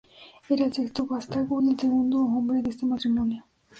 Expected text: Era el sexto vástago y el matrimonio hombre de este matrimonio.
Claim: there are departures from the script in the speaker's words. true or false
true